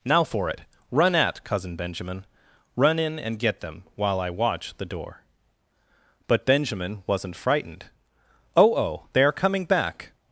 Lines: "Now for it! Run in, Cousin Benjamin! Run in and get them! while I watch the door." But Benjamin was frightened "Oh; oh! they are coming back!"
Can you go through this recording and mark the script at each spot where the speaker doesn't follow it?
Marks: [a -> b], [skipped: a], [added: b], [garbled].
"Now for it! Run [in, -> at] Cousin Benjamin! Run in and get them! while I watch the door." But Benjamin [was -> wasn't] frightened "Oh; oh! they are coming back!"